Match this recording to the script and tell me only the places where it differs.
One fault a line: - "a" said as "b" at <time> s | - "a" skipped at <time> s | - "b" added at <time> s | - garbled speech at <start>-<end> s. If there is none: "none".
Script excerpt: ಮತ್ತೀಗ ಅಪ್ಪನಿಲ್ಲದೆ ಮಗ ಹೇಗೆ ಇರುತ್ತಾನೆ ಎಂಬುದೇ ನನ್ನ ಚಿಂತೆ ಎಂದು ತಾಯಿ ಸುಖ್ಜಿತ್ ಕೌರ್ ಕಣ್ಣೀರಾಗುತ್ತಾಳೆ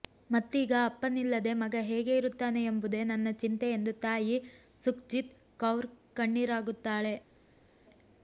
none